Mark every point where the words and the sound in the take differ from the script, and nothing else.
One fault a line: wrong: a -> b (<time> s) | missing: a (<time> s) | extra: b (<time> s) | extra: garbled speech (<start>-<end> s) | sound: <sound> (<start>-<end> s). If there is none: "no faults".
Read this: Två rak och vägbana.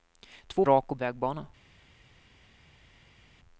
no faults